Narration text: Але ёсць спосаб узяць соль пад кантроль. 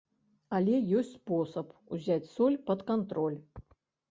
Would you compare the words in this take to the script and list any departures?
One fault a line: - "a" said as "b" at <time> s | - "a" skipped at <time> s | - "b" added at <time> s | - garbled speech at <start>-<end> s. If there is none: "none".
none